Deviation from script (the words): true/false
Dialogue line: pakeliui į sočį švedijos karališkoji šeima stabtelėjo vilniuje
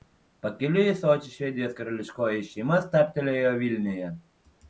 false